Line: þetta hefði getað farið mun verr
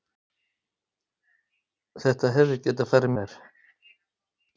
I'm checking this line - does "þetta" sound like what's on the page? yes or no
yes